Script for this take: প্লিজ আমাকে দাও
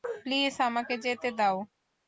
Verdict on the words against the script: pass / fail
fail